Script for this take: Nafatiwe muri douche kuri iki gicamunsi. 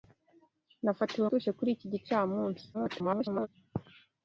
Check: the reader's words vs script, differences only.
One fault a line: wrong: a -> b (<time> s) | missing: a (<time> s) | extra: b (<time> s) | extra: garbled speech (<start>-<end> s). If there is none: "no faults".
missing: muri (1.3 s)
extra: garbled speech (2.7-3.5 s)